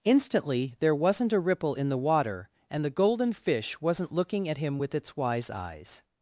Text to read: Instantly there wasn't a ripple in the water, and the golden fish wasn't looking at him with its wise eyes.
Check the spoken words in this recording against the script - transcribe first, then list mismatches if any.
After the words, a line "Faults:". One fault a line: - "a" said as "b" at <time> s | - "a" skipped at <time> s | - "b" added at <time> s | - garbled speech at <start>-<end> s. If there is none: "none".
Instantly there wasn't a ripple in the water, and the golden fish wasn't looking at him with its wise eyes.
Faults:
none